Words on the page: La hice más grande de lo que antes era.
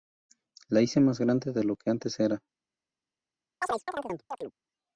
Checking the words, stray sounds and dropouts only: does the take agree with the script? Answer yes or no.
no